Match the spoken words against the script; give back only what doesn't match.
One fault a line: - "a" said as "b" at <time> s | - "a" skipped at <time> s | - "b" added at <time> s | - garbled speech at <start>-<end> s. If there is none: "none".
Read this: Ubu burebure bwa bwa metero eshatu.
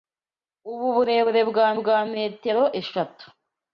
none